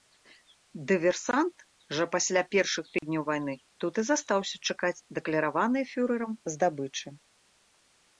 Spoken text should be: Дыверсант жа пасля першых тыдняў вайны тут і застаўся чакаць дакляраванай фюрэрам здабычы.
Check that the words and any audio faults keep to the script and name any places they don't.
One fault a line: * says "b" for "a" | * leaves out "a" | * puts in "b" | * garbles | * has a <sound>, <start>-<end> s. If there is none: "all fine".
* has a dropout, 3.0-3.0 s